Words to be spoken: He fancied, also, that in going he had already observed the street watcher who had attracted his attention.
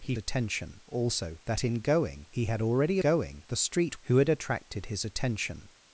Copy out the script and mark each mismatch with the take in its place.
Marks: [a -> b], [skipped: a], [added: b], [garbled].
He [fancied, -> attention] also, that in going he had already [observed -> going] the street [skipped: watcher] who had attracted his attention.